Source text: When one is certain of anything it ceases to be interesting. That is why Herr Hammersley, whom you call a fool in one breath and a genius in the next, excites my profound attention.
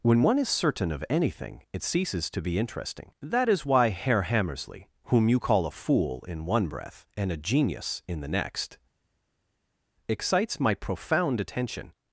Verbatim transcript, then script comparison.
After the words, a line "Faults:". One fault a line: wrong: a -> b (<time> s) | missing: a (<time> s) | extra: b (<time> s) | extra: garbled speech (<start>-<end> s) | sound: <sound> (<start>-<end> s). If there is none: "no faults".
When one is certain of anything it ceases to be interesting. That is why Herr Hammersley, whom you call a fool in one breath and a genius in the next, excites my profound attention.
Faults:
no faults